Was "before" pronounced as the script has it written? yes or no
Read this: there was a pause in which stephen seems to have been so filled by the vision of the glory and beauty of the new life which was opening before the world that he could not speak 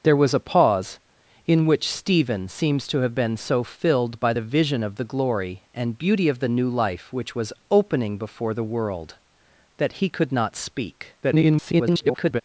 yes